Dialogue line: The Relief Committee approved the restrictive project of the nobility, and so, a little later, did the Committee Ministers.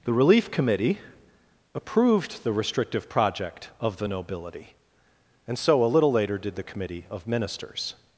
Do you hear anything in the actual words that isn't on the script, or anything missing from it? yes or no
yes